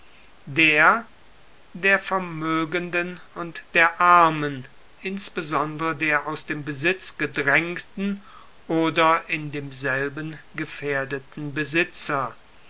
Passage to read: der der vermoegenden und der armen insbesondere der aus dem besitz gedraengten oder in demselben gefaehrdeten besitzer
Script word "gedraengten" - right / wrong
right